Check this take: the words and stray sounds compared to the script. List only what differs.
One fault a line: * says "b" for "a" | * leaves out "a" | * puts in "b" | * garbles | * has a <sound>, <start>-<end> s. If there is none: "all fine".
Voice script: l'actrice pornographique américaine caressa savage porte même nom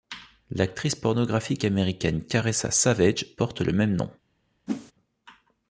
* puts in "le"
* has a whoosh, 4.7-4.9 s